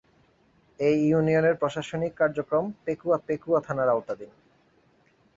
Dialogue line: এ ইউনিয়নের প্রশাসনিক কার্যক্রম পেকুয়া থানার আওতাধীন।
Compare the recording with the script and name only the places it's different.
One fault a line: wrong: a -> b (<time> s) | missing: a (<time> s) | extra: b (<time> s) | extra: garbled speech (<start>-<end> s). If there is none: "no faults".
extra: পেকুয়া (3.3 s)